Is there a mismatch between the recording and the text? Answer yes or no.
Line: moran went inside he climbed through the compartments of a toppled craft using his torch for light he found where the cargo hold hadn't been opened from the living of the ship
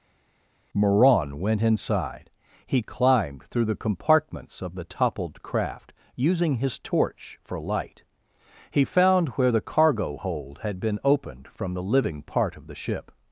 yes